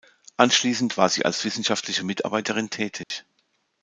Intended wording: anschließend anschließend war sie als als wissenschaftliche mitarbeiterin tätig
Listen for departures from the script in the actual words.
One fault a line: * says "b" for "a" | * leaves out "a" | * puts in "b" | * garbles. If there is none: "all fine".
* leaves out "anschließend"
* leaves out "als"